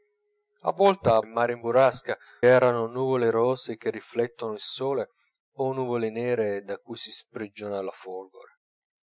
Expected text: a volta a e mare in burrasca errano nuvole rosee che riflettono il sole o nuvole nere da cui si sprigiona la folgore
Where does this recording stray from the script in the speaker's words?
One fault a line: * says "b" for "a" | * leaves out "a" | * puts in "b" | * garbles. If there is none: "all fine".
all fine